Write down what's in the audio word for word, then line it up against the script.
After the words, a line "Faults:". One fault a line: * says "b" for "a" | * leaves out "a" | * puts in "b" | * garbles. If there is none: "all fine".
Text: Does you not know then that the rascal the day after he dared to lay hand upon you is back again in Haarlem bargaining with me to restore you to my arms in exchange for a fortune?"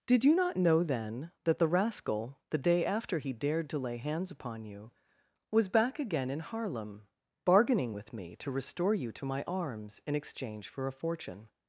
Did you not know then that the rascal the day after he dared to lay hands upon you was back again in Haarlem bargaining with me to restore you to my arms in exchange for a fortune?"
Faults:
* says "Did" for "Does"
* says "hands" for "hand"
* says "was" for "is"